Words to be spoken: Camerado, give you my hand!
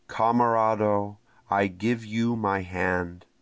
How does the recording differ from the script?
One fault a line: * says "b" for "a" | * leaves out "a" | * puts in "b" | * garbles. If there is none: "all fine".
* puts in "I"